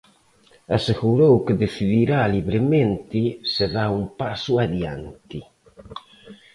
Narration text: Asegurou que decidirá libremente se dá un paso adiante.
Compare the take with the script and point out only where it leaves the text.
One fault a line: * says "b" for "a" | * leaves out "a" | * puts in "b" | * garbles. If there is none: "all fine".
all fine